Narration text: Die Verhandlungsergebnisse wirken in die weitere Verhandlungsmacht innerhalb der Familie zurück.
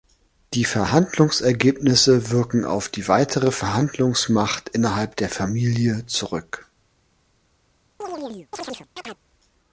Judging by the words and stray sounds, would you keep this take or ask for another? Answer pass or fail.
fail